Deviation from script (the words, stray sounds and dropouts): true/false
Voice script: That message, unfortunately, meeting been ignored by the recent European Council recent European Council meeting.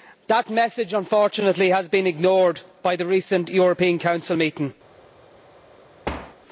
true